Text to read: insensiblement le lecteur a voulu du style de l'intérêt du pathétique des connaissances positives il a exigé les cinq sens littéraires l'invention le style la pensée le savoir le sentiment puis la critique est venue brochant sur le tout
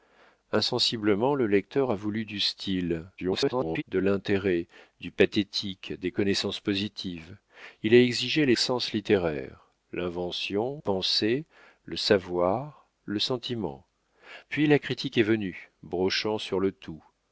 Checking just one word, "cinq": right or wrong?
wrong